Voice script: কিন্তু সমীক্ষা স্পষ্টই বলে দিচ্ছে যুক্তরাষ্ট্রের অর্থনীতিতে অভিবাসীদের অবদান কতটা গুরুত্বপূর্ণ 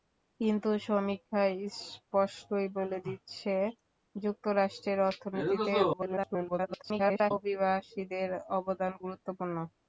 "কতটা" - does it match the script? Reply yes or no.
no